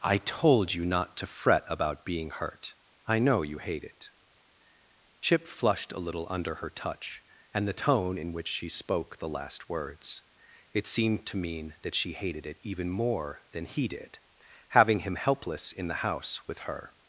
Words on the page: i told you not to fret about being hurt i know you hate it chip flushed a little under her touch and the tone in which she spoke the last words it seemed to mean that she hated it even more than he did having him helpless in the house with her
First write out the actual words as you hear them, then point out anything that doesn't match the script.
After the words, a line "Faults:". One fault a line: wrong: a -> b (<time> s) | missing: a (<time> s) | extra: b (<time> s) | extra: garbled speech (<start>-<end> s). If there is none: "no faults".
i told you not to fret about being hurt i know you hate it chip flushed a little under her touch and the tone in which she spoke the last words it seemed to mean that she hated it even more than he did having him helpless in the house with her
Faults:
no faults